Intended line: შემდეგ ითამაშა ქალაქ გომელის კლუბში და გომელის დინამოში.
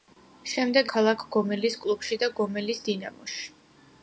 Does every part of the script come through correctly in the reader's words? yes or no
no